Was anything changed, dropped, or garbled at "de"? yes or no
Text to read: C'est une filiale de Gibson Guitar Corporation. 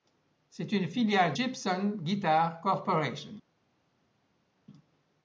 yes